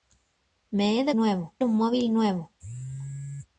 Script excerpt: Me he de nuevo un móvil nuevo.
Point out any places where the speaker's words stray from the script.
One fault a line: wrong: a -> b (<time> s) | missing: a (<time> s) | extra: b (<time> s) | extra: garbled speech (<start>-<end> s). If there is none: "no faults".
no faults